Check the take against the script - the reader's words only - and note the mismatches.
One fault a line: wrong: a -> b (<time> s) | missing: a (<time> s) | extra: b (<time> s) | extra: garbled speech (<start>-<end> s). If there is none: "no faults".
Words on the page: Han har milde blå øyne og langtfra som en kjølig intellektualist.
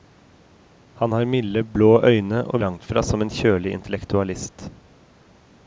no faults